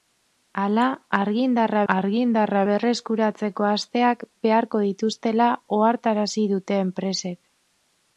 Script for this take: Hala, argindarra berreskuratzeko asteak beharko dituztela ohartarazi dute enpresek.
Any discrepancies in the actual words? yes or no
yes